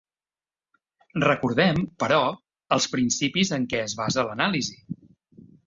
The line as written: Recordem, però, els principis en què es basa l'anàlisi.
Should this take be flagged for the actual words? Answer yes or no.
no